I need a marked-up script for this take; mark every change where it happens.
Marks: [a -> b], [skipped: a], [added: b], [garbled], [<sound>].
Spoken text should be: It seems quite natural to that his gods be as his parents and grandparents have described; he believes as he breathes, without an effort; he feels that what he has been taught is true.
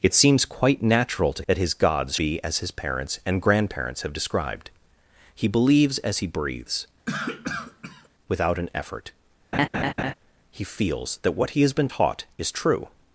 It seems quite natural to that his gods be as his parents and grandparents have described; he believes as he breathes, [cough] without an effort; [laugh] he feels that what he has been taught is true.